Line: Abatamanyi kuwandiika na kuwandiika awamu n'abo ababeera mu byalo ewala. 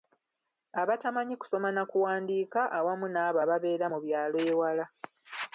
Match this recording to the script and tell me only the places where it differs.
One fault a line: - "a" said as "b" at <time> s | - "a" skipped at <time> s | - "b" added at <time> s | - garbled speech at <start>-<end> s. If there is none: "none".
- "kuwandiika" said as "kusoma" at 1.4 s